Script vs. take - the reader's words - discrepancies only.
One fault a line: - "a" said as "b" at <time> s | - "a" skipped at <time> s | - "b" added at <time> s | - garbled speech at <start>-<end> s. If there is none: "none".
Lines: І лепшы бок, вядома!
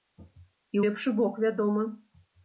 none